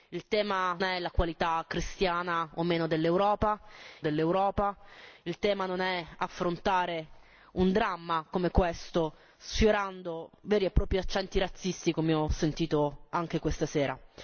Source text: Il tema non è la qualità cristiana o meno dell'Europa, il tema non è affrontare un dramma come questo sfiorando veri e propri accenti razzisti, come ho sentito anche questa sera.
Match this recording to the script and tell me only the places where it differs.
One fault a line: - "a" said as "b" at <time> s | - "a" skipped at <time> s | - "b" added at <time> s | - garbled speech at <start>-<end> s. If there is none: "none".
- "non" skipped at 0.8 s
- "dell'Europa" added at 4.0 s